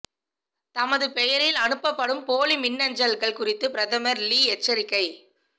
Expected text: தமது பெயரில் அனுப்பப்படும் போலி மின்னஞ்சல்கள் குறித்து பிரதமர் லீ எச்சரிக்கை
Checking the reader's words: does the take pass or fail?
pass